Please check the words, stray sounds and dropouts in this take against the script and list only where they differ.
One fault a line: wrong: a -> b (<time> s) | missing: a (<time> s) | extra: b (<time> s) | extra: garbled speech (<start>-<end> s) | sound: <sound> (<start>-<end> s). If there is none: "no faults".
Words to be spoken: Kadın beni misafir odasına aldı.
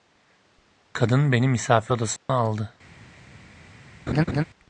sound: dropout (2.2-2.3 s)
sound: laugh (4.1-4.4 s)